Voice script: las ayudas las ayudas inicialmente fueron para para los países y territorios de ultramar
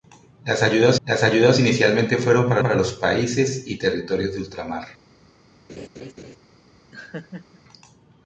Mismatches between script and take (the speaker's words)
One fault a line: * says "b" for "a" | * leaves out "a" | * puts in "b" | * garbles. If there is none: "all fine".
all fine